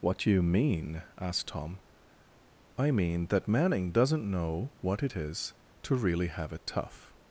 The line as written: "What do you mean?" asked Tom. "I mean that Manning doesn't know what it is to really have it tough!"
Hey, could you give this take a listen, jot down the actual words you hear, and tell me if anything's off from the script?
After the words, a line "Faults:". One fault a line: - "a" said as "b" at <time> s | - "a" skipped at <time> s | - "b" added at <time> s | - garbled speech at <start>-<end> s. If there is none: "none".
"What do you mean?" asked Tom. "I mean that Manning doesn't know what it is to really have it tough!"
Faults:
none